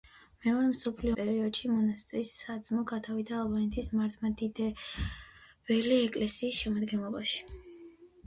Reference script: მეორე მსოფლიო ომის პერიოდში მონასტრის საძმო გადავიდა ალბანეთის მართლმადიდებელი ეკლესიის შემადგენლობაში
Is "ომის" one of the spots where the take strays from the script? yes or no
yes